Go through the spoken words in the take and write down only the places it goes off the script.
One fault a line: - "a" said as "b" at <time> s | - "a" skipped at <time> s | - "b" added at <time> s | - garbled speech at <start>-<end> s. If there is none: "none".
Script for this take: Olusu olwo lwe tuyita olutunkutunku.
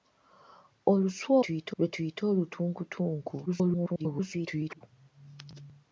- "olwo" said as "tuyita" at 1.4 s
- garbled speech at 3.5-4.8 s